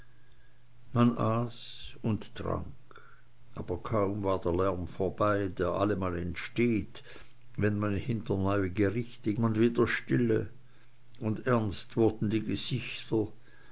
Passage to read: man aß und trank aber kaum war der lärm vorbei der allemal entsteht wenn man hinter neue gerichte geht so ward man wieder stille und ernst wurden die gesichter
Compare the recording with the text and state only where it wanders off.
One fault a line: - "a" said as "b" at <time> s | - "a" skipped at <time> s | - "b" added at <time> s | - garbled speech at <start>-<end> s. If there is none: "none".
- "geht so ward" skipped at 9.3 s